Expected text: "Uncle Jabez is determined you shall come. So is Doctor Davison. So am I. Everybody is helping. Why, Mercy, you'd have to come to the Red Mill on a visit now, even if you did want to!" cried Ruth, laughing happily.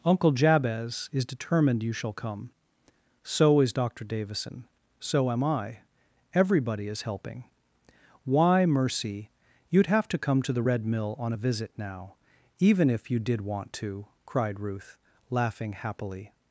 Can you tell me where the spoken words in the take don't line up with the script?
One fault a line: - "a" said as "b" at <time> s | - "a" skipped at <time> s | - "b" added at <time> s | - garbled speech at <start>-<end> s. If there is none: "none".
none